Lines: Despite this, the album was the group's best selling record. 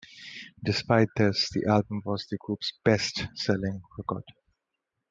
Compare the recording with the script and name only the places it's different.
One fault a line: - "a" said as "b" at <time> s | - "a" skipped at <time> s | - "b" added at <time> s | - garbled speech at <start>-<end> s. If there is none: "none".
none